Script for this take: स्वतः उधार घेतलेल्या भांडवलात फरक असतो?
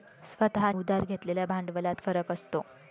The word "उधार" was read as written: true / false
true